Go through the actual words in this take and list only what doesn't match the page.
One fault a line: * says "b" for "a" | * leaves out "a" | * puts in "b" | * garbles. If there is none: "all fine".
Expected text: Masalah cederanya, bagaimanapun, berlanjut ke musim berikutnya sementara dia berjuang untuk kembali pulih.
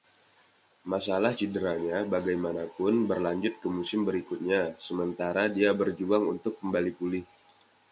all fine